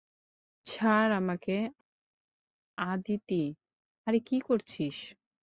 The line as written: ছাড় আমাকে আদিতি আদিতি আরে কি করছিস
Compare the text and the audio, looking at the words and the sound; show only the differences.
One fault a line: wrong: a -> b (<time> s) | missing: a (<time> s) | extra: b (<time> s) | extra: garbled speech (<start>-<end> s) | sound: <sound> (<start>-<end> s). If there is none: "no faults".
missing: আদিতি (3.4 s)